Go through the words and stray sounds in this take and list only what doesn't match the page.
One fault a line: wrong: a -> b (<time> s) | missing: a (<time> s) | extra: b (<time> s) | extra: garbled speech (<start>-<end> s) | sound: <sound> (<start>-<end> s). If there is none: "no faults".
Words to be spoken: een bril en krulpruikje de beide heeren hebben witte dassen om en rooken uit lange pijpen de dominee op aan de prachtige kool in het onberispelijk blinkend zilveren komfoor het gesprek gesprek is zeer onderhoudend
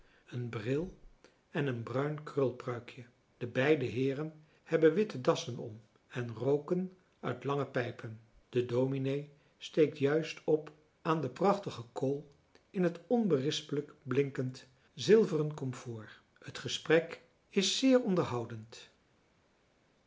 extra: een bruin (1.7 s)
extra: steekt juist (9.6 s)
missing: gesprek (17.2 s)